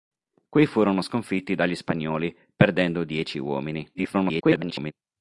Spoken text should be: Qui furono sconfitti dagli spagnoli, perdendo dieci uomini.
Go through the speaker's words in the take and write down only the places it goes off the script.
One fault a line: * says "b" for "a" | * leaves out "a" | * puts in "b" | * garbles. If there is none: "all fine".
* garbles